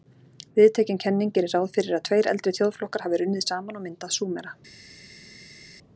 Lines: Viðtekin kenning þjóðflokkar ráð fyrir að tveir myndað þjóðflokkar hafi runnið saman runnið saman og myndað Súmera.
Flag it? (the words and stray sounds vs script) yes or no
yes